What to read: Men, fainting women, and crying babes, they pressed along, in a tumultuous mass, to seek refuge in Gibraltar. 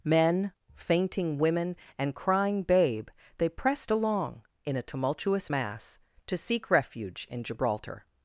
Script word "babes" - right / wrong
wrong